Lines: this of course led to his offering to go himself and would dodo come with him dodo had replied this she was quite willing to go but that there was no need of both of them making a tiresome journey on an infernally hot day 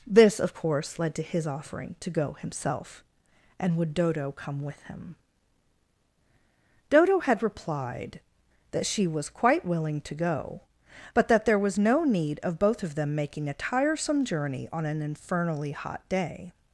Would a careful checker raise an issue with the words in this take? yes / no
yes